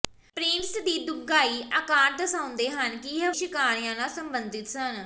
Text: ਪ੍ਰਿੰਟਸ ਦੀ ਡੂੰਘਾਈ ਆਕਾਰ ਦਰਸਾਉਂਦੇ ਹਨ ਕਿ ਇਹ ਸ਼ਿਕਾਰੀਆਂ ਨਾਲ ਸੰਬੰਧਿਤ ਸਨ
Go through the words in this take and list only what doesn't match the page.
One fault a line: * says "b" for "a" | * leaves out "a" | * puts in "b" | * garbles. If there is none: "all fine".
all fine